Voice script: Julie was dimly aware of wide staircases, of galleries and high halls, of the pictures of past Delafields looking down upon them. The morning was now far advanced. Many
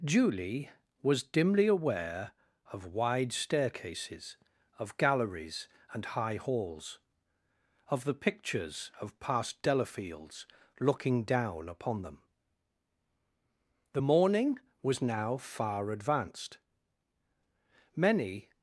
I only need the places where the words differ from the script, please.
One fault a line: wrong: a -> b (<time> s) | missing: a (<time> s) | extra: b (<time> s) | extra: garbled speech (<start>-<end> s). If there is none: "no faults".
no faults